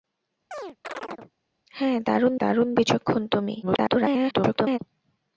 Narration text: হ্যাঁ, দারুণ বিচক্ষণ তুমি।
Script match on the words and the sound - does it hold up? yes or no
no